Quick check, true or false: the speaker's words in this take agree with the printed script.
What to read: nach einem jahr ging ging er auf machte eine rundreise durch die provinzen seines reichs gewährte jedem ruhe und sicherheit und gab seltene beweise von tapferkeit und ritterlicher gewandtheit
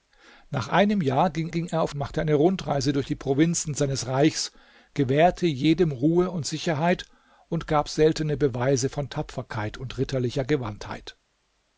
true